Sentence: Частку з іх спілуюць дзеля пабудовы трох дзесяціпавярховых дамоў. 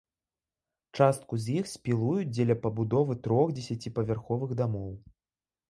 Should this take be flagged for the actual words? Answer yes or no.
no